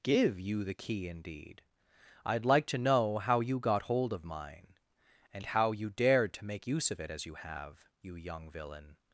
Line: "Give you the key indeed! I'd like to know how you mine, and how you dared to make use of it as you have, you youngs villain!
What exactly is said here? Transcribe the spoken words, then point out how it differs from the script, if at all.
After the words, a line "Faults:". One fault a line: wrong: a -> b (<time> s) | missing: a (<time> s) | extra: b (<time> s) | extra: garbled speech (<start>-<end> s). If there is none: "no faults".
"Give you the key indeed! I'd like to know how you got hold of mine, and how you dared to make use of it as you have, you young villain!
Faults:
extra: got hold of (3.6 s)
wrong: youngs -> young (8.2 s)